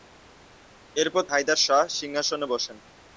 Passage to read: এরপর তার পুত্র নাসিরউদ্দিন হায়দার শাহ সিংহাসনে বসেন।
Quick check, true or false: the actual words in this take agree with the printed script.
false